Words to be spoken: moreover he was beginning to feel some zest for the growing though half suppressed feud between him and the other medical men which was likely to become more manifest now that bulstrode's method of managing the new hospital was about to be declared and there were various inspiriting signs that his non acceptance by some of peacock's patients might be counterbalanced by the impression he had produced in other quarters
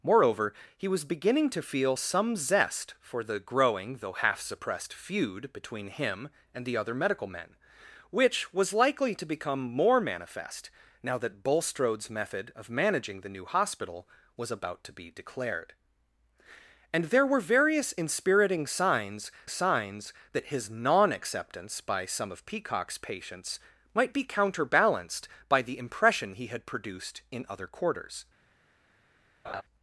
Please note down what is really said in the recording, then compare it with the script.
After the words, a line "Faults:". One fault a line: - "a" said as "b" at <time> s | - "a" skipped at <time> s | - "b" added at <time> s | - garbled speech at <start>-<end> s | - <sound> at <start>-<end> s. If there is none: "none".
moreover he was beginning to feel some zest for the growing though half suppressed feud between him and the other medical men which was likely to become more manifest now that bulstrode's method of managing the new hospital was about to be declared and there were various inspiriting signs signs that his non acceptance by some of peacock's patients might be counterbalanced by the impression he had produced in other quarters
Faults:
- "signs" added at 19.5 s
- laugh at 29.4-29.6 s